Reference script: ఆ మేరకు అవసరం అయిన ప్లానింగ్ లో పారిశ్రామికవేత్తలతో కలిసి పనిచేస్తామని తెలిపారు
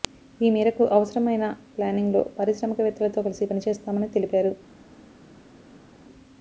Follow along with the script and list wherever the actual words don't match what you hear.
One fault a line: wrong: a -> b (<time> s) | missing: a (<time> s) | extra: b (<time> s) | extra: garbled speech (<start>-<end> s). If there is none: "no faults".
wrong: ఆ -> ఈ (0.4 s)